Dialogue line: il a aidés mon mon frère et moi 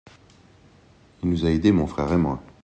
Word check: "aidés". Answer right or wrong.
right